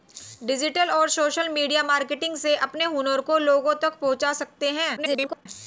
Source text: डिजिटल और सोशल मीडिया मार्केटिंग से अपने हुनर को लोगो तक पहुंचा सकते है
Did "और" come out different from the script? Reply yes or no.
no